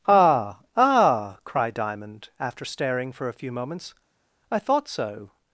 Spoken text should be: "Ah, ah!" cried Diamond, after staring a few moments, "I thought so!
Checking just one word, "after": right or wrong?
right